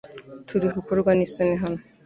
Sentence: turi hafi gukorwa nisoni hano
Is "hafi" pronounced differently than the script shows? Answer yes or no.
yes